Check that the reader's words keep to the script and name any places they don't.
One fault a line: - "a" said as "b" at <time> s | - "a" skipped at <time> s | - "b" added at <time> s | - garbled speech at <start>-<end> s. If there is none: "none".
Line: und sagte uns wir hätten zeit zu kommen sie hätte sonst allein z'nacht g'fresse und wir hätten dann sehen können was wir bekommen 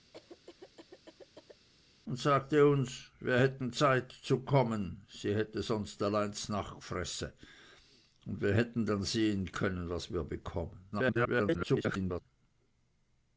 - garbled speech at 10.9-12.2 s